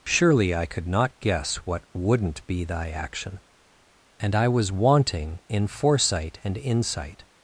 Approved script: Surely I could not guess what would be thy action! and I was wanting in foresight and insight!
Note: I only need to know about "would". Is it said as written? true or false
false